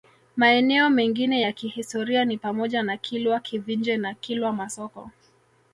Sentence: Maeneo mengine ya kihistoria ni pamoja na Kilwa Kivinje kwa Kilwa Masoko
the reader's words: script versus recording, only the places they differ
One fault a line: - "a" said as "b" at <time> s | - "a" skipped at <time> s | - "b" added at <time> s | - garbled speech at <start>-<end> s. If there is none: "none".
- "kwa" said as "na" at 4.0 s